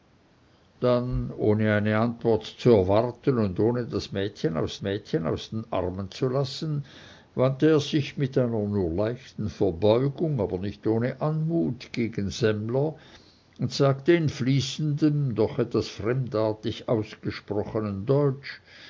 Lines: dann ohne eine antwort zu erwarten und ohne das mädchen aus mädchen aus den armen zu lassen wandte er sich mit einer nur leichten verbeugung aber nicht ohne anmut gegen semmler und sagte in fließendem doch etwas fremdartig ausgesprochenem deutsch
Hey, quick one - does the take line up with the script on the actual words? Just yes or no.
yes